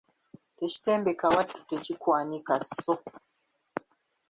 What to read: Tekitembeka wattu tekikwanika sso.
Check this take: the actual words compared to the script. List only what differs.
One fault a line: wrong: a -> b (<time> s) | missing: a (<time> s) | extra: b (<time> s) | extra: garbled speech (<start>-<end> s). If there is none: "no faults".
no faults